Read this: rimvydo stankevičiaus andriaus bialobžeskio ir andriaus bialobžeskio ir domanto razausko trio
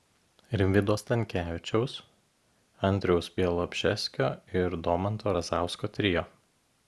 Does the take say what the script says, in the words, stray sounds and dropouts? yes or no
no